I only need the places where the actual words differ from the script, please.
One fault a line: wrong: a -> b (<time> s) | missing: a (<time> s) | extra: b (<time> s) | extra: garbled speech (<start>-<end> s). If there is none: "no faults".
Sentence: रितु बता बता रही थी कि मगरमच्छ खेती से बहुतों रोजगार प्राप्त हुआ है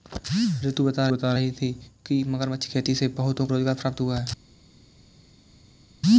no faults